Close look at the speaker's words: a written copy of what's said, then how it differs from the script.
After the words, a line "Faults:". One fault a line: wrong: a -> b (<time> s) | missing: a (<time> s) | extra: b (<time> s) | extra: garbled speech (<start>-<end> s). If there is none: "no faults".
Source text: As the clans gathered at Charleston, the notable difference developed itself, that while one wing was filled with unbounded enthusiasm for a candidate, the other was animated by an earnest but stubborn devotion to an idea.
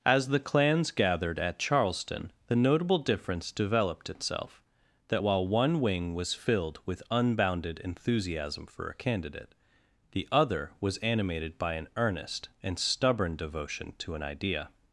As the clans gathered at Charleston, the notable difference developed itself, that while one wing was filled with unbounded enthusiasm for a candidate, the other was animated by an earnest and stubborn devotion to an idea.
Faults:
wrong: but -> and (12.6 s)